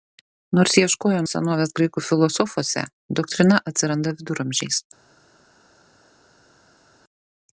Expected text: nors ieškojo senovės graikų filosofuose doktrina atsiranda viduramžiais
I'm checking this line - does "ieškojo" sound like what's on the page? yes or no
yes